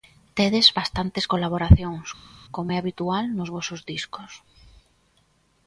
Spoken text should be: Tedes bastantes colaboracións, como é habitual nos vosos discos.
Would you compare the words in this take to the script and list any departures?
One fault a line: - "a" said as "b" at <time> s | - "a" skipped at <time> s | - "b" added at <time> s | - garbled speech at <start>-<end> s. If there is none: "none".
none